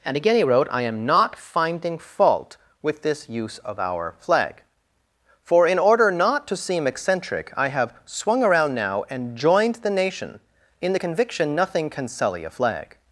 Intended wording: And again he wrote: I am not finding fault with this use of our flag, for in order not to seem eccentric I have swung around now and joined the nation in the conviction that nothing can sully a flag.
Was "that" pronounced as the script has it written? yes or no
no